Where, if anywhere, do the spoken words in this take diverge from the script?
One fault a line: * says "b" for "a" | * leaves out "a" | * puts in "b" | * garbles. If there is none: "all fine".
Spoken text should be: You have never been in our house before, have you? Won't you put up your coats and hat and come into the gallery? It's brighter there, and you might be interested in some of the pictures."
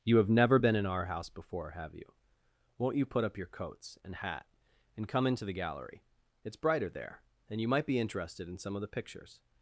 all fine